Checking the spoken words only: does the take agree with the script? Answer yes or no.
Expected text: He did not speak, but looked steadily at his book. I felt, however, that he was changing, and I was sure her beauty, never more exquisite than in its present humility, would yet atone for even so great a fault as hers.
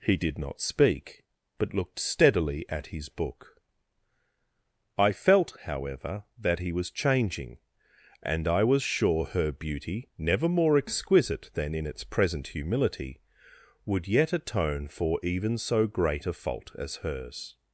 yes